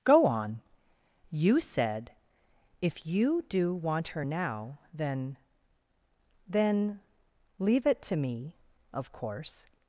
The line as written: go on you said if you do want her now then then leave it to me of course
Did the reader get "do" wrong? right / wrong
right